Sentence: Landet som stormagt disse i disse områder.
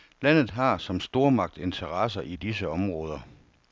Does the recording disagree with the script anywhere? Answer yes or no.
yes